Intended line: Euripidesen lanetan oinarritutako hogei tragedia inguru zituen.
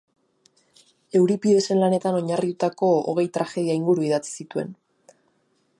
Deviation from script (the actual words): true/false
true